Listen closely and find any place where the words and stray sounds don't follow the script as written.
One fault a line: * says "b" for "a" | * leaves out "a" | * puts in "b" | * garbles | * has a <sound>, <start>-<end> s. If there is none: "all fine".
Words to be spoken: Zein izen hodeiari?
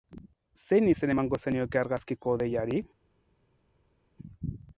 * puts in "emango zenioke argazkiko"